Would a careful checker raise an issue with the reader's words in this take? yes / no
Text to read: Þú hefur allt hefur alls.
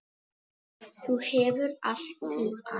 yes